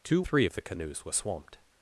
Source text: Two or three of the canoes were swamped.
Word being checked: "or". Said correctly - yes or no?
no